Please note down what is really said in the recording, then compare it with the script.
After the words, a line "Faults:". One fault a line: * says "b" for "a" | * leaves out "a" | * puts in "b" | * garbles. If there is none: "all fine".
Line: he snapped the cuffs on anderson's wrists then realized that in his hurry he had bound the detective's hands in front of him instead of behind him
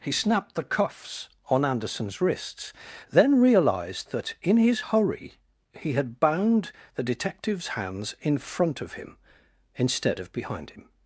he snapped the cuffs on anderson's wrists then realized that in his hurry he had bound the detective's hands in front of him instead of behind him
Faults:
all fine